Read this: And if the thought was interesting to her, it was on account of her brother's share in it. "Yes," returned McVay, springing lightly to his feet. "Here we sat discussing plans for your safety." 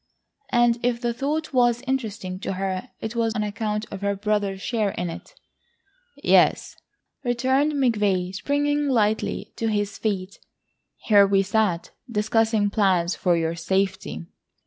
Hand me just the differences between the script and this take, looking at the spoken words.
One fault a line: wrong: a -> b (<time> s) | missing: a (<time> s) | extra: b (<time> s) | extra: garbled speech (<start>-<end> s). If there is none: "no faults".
no faults